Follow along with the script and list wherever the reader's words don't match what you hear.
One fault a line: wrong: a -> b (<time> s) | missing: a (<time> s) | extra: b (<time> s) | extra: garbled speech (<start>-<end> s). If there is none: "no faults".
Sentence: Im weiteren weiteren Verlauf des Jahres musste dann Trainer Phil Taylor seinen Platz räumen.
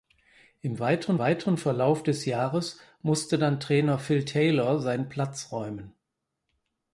no faults